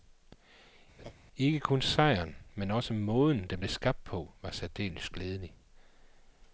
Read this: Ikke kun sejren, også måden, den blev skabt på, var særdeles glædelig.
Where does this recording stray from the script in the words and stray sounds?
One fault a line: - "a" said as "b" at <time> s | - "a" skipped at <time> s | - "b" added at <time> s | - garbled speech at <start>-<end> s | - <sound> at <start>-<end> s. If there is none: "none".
- laugh at 1.0-1.1 s
- "men" added at 2.6 s